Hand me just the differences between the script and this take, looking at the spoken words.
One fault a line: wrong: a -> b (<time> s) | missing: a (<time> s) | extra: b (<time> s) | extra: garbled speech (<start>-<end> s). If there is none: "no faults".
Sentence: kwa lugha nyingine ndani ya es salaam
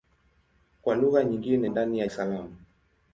no faults